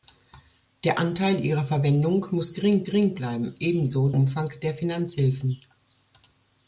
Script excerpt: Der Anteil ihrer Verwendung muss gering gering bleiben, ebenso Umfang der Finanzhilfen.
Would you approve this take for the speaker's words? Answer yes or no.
yes